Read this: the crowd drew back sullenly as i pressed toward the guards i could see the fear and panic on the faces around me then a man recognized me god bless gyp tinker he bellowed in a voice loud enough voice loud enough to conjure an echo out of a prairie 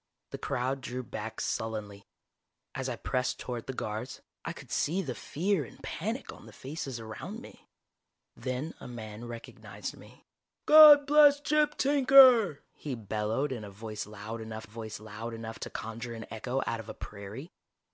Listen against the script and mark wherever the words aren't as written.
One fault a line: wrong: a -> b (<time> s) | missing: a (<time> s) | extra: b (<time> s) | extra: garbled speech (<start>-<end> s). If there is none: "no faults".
no faults